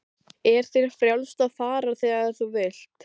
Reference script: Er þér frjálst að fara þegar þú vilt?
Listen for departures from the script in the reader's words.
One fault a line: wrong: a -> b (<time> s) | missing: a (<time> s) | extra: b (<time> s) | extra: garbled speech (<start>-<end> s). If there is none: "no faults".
no faults